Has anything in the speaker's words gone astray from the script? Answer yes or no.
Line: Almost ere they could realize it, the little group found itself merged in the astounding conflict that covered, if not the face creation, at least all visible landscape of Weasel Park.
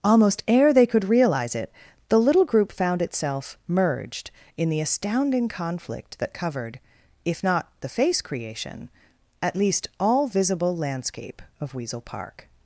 no